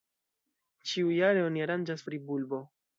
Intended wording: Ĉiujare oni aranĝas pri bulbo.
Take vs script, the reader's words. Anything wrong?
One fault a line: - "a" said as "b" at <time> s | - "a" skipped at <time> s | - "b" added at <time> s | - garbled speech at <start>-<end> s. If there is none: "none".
none